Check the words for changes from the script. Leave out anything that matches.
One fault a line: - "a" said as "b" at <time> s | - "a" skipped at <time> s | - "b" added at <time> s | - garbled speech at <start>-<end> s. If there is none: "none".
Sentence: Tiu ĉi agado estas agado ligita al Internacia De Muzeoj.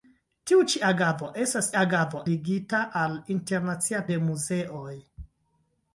none